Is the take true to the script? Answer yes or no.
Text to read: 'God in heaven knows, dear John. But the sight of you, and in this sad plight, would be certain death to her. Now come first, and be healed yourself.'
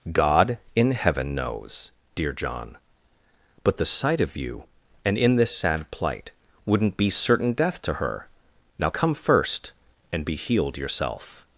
no